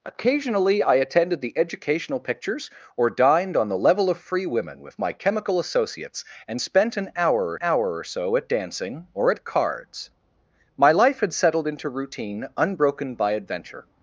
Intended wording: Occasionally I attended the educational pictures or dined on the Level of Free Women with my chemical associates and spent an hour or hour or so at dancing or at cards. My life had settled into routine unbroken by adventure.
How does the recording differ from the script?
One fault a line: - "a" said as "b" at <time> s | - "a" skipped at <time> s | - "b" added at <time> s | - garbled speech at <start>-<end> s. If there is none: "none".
none